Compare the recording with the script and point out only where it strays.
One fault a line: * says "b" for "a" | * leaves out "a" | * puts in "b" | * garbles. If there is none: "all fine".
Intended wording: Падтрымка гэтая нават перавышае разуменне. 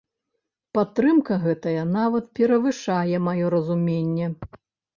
* puts in "маё"